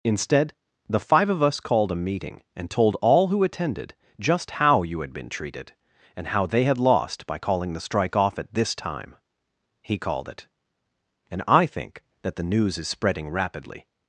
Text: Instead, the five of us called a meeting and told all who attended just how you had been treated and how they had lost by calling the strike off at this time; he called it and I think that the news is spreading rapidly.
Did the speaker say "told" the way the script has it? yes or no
yes